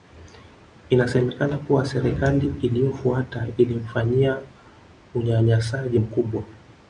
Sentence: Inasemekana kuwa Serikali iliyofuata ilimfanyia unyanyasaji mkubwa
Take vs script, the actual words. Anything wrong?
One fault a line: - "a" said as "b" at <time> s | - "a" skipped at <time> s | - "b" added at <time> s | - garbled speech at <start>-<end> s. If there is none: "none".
none